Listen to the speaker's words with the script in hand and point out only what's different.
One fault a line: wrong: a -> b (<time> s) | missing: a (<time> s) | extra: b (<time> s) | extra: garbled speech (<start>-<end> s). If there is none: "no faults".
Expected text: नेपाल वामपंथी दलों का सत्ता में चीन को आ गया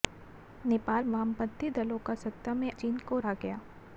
no faults